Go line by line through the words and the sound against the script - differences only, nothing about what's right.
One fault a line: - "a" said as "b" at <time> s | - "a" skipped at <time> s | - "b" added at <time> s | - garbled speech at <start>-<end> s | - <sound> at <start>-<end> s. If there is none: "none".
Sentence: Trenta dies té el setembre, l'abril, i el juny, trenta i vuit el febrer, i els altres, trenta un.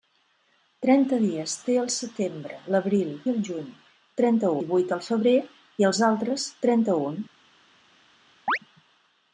- chirp at 8.5-8.6 s